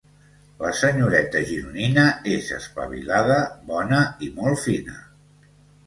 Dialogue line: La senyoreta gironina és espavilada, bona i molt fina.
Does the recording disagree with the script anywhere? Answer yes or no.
no